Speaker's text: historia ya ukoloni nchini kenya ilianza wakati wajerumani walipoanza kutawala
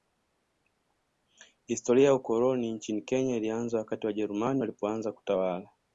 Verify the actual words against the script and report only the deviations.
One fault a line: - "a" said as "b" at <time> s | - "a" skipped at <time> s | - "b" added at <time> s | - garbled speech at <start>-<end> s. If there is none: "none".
none